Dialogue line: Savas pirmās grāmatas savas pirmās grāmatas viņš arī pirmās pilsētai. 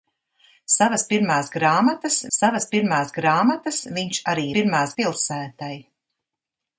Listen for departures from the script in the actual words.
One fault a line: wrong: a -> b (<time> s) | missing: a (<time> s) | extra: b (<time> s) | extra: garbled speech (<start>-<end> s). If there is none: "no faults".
no faults